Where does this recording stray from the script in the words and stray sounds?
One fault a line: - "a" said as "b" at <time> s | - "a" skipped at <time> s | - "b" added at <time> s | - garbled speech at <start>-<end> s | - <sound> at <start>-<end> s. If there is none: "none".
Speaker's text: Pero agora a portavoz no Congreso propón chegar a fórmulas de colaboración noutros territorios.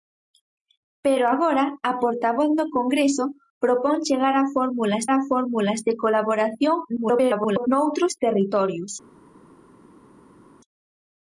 - "a fórmulas" added at 5.1 s
- garbled speech at 7.0-7.7 s